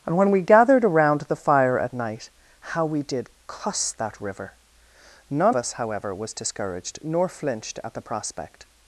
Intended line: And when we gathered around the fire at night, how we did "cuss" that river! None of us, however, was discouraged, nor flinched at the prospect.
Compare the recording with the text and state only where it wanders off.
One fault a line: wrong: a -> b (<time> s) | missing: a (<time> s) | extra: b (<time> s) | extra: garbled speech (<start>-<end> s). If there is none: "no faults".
missing: of (5.5 s)